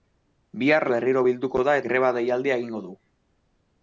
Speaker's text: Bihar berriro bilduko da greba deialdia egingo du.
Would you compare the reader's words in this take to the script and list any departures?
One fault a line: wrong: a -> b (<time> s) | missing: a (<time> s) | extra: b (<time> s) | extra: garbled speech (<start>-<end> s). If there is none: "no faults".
no faults